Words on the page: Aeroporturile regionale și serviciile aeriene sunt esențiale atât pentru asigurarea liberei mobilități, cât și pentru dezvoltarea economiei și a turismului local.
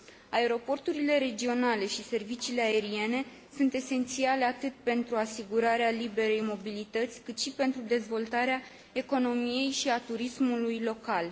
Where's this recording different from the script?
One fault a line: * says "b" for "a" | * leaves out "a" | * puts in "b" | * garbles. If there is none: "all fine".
all fine